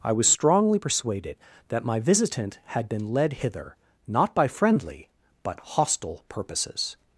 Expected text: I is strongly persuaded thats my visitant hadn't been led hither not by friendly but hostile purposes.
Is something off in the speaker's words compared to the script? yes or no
yes